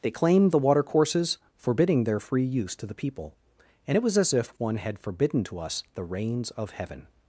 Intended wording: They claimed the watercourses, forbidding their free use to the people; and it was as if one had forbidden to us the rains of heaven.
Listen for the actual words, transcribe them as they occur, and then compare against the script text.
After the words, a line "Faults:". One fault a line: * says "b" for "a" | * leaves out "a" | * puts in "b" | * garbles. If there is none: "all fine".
They claimed the watercourses, forbidding their free use to the people; and it was as if one had forbidden to us the rains of heaven.
Faults:
all fine